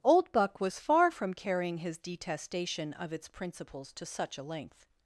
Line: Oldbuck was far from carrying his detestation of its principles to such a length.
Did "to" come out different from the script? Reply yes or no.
no